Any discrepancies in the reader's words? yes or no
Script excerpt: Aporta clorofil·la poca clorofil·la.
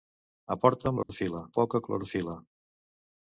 no